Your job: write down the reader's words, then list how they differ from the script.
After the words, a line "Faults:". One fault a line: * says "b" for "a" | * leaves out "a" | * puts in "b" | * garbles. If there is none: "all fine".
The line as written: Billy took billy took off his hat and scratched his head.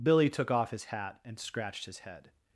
Billy took off his hat and scratched his head.
Faults:
* leaves out "billy took"